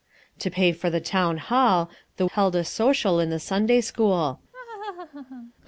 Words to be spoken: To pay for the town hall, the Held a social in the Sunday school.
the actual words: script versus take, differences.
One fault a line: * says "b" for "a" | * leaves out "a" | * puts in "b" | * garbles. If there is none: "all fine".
all fine